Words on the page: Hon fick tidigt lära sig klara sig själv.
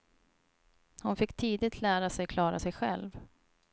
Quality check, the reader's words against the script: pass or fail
pass